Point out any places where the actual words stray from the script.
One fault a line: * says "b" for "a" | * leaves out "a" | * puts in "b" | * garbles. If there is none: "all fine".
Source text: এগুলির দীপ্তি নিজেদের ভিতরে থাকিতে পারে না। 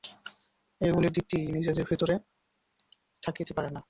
all fine